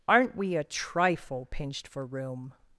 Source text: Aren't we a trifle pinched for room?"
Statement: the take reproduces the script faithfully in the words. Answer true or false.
true